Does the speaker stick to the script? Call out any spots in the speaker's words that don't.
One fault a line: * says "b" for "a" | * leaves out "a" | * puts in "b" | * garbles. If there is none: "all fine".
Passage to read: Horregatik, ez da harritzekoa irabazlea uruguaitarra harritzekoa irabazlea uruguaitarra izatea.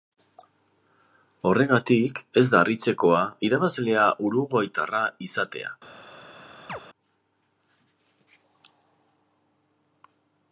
* leaves out "harritzekoa irabazlea uruguaitarra"